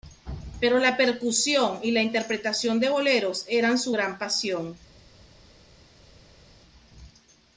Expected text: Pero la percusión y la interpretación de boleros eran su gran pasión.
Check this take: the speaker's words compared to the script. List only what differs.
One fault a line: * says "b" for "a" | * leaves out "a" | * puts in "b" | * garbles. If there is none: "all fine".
all fine